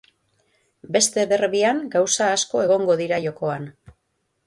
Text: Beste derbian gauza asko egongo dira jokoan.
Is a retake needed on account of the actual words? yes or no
no